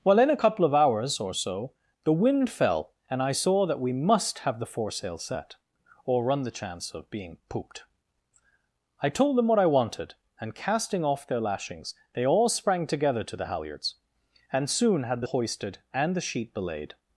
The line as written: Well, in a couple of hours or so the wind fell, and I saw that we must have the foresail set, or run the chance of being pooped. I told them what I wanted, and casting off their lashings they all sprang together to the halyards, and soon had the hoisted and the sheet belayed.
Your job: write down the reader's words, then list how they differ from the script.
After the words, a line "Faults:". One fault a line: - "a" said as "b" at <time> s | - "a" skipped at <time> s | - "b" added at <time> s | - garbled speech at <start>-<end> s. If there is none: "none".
Well, in a couple of hours or so the wind fell, and I saw that we must have the foresail set, or run the chance of being pooped. I told them what I wanted, and casting off their lashings they all sprang together to the halyards, and soon had the hoisted and the sheet belayed.
Faults:
none